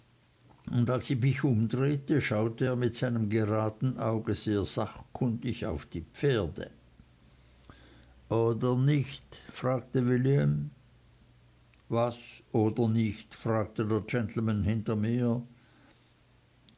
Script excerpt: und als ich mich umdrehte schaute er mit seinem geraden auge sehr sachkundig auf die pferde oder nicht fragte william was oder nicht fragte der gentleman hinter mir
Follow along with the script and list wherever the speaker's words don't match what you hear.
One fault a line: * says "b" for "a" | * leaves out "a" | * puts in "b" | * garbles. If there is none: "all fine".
all fine